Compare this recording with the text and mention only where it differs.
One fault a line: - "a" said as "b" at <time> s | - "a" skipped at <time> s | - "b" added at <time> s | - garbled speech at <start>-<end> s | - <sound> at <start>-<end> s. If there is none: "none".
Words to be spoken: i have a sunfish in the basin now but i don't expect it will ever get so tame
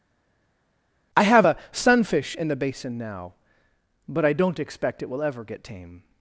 - "so" skipped at 5.6 s